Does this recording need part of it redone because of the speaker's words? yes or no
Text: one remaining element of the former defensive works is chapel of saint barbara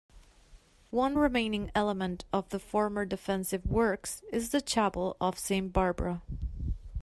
yes